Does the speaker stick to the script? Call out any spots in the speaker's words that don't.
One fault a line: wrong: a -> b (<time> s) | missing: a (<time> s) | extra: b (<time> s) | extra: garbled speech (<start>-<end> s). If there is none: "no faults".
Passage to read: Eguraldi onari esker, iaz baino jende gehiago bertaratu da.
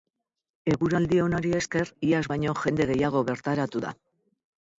no faults